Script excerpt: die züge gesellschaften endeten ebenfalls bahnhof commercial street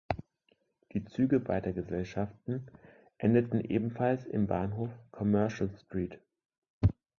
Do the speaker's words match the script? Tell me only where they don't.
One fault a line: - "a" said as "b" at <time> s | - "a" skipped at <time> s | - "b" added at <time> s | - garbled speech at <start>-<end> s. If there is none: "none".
- "beider" added at 1.4 s
- "im" added at 4.2 s